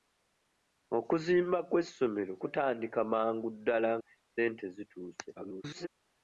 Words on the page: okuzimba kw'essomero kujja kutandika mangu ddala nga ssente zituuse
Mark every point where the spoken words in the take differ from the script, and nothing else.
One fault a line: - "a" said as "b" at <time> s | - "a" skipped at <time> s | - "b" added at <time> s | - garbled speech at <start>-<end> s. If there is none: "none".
- "kujja" skipped at 2.3 s
- "nga" skipped at 3.9 s
- garbled speech at 5.4-5.9 s